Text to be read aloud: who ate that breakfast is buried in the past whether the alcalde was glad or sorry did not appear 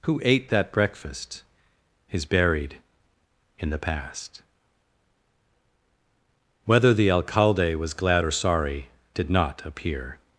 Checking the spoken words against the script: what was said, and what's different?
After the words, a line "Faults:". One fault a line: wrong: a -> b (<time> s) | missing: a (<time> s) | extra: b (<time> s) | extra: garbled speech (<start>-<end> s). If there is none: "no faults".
who ate that breakfast is buried in the past whether the alcalde was glad or sorry did not appear
Faults:
no faults